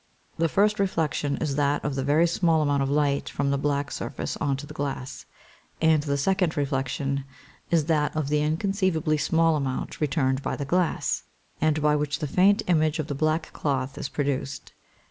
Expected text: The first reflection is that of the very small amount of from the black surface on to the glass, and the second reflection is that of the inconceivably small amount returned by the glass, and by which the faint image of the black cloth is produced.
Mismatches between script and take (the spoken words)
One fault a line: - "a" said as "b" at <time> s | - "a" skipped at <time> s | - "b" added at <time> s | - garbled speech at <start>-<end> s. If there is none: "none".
- "light" added at 2.9 s